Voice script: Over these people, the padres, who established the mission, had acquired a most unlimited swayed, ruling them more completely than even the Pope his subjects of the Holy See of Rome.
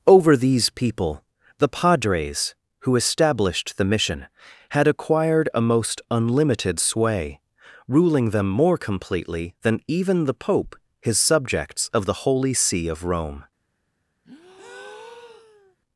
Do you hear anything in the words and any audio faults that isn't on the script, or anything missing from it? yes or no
yes